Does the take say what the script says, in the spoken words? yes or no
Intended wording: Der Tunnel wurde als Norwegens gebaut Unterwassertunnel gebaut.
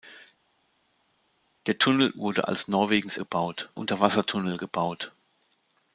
yes